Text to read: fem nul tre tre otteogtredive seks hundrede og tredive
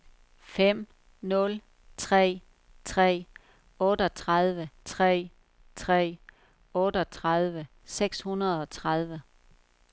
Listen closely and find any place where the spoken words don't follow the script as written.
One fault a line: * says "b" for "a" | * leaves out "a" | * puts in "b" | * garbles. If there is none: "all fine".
* puts in "tre tre otteogtredive"